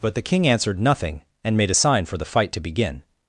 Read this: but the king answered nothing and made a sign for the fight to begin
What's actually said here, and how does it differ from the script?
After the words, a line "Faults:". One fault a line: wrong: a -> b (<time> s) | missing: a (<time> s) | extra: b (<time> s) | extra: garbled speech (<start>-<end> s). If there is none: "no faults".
but the king answered nothing and made a sign for the fight to begin
Faults:
no faults